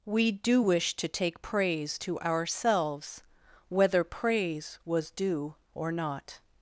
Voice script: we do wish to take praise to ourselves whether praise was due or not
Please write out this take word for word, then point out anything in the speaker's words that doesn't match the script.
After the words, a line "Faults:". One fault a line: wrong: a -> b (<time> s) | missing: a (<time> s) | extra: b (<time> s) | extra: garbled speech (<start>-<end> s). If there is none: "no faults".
we do wish to take praise to ourselves whether praise was due or not
Faults:
no faults